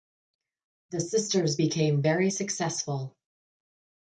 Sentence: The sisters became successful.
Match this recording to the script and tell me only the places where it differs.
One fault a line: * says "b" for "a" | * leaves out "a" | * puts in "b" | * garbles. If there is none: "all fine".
* puts in "very"